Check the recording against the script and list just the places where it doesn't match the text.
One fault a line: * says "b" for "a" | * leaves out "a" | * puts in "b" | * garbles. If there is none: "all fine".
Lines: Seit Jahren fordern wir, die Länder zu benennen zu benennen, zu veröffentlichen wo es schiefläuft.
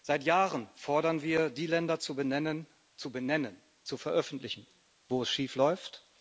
all fine